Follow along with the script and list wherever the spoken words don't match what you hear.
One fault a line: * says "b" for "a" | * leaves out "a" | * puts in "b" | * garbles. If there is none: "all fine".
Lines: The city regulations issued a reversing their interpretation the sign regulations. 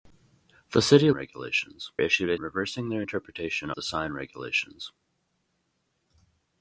all fine